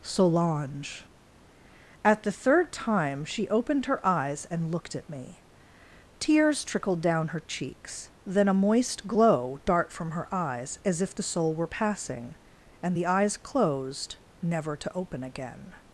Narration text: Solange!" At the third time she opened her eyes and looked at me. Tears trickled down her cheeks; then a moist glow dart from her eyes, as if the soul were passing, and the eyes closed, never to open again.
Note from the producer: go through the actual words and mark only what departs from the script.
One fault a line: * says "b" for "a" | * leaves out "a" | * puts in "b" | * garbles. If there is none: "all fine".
all fine